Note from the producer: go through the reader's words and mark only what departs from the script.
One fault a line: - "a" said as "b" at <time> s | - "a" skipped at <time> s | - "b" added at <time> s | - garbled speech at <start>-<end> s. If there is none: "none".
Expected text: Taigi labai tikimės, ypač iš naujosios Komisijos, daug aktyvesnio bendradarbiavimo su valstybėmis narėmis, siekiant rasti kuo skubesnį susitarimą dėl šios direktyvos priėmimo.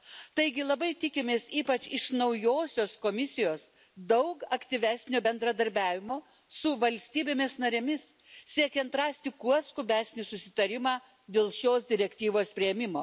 none